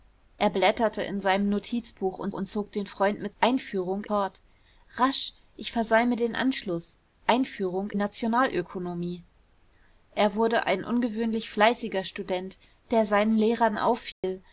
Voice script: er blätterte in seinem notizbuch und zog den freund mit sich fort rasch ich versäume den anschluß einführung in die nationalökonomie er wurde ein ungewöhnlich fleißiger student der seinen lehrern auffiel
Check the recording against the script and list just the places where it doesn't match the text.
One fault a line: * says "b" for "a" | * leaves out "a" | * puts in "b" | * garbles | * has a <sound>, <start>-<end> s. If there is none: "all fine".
* puts in "und"
* says "einführung" for "sich"
* leaves out "in die"
* has a dropout, 14.1-14.2 s